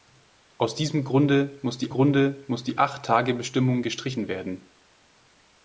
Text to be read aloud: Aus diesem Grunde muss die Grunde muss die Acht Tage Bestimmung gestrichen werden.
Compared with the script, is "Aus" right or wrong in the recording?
right